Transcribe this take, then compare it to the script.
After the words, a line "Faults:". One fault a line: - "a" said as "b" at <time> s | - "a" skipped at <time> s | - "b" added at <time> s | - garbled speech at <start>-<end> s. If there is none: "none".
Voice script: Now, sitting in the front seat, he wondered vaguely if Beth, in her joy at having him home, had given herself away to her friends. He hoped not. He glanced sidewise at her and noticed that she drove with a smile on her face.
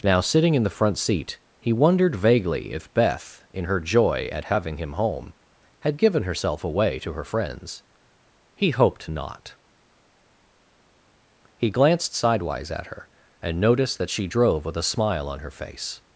Now, sitting in the front seat, he wondered vaguely if Beth, in her joy at having him home, had given herself away to her friends. He hoped not. He glanced sidewise at her and noticed that she drove with a smile on her face.
Faults:
none